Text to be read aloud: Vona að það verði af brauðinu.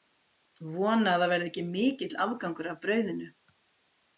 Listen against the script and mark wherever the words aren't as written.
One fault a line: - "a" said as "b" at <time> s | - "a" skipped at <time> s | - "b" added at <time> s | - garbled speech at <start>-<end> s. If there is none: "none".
- "ekki mikill afgangur" added at 1.5 s